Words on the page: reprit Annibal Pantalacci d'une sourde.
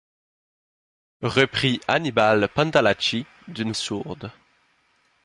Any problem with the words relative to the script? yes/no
no